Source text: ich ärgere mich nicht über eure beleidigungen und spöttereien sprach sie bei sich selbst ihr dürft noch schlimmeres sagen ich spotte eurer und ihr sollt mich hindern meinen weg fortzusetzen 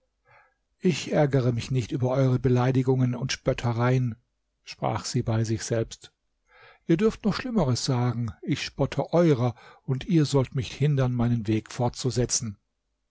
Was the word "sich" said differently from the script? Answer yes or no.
no